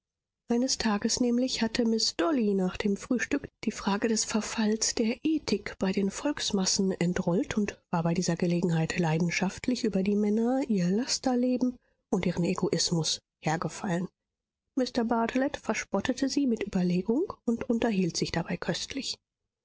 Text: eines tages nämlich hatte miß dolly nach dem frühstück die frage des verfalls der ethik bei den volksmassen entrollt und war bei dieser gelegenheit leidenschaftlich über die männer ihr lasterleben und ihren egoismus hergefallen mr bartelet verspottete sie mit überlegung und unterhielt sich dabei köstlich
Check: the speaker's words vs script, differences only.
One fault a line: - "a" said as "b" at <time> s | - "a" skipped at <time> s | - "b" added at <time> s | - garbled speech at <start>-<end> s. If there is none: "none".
none